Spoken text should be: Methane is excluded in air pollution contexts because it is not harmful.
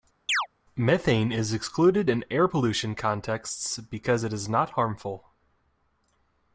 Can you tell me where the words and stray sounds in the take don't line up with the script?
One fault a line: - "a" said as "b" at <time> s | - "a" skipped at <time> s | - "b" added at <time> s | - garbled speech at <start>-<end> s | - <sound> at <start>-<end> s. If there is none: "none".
- chirp at 0.3-0.5 s